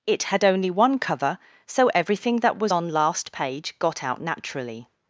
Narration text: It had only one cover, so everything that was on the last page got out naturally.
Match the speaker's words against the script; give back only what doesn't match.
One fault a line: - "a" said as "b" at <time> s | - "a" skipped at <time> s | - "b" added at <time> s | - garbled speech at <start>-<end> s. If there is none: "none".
- "the" skipped at 2.9 s